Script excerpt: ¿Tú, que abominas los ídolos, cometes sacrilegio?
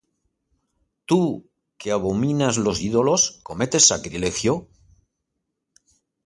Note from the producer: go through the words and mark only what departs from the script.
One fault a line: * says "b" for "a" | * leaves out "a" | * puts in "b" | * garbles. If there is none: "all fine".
all fine